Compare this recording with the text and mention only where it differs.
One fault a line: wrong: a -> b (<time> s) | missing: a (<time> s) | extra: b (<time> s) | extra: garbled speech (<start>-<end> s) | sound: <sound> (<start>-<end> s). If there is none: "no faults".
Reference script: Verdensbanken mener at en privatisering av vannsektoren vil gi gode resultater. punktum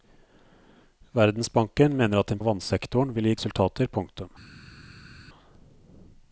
missing: privatisering (2.4 s)
missing: gode (3.3 s)